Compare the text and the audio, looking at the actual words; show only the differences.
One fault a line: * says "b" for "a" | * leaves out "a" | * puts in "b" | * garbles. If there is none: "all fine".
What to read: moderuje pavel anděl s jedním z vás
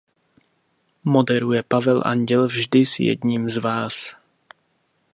* puts in "vždy"